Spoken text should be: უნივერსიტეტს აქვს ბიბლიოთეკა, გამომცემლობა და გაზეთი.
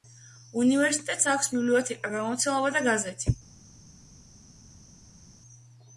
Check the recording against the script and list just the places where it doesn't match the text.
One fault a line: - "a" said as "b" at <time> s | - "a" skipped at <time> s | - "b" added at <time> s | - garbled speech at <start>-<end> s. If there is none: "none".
none